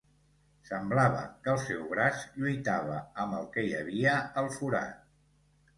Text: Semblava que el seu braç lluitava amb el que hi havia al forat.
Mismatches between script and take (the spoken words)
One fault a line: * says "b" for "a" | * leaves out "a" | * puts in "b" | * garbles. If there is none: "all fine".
all fine